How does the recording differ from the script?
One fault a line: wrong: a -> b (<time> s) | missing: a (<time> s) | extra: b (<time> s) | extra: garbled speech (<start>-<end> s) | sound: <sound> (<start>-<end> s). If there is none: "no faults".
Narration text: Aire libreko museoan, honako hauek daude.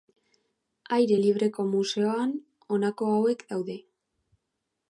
no faults